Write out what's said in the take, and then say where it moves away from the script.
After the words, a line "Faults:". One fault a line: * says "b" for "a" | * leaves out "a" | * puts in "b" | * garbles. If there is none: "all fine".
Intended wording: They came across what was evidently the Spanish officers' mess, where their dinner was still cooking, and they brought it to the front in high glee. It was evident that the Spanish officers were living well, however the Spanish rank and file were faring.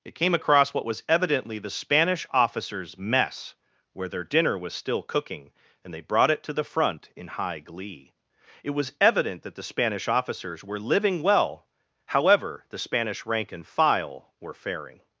It came across what was evidently the Spanish officers' mess, where their dinner was still cooking, and they brought it to the front in high glee. It was evident that the Spanish officers were living well, however the Spanish rank and file were faring.
Faults:
* says "It" for "They"